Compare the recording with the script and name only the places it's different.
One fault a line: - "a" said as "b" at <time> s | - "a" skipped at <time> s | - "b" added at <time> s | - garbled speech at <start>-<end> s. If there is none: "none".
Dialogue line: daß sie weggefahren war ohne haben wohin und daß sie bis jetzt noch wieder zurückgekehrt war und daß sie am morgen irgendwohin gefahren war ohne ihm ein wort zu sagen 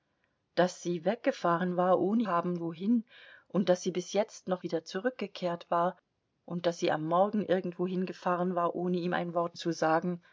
none